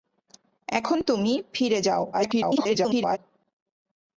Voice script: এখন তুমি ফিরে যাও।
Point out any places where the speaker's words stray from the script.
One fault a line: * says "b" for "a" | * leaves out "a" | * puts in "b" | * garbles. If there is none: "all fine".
* garbles